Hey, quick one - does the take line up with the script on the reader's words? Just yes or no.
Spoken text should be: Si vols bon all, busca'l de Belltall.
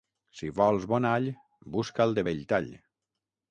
yes